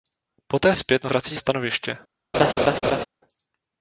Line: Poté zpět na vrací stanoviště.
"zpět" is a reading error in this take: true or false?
false